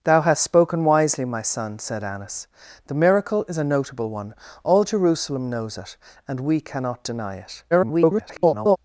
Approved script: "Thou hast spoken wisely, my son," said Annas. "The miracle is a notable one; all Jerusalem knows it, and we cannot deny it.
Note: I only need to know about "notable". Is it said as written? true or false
true